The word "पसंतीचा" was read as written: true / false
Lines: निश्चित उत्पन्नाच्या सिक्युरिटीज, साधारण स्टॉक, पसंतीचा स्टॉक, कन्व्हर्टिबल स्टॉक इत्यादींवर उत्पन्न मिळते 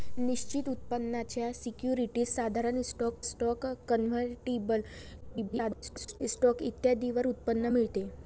false